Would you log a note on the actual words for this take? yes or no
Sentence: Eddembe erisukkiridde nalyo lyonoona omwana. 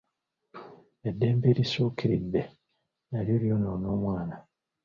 no